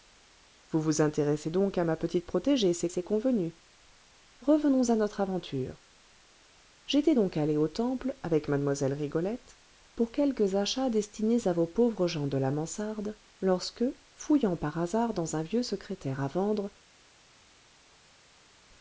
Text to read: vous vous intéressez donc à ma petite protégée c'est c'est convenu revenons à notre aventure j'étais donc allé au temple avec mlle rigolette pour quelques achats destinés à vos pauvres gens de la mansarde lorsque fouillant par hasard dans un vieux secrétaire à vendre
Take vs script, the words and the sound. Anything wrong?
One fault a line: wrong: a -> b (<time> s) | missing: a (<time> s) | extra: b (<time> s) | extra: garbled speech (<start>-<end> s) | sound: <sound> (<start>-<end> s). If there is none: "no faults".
no faults